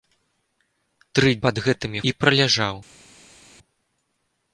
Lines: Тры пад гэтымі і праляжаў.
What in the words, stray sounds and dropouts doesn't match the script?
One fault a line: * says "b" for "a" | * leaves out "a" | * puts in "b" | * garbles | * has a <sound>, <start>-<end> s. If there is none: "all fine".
all fine